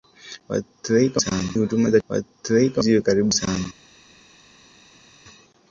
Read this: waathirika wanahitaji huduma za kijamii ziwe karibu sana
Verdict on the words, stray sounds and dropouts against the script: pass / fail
fail